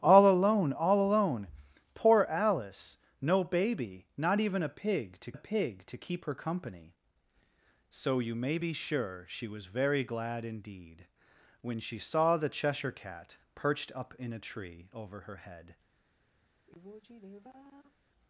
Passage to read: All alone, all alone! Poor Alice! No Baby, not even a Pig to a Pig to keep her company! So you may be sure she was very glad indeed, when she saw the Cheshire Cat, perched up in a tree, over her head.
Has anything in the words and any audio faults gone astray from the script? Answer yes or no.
yes